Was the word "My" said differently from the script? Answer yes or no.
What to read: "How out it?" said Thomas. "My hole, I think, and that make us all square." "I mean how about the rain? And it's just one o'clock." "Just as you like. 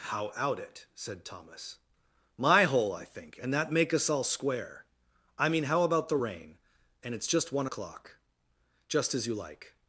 no